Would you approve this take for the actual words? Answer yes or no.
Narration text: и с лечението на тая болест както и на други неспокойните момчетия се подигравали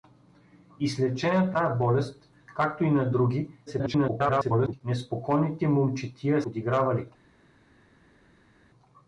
no